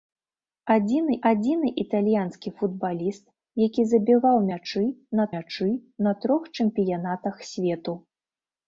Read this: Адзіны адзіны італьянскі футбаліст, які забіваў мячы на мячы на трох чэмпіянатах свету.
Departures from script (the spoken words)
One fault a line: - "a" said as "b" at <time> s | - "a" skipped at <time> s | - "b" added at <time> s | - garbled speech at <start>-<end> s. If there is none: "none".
none